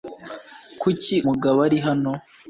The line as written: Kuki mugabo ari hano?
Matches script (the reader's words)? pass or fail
pass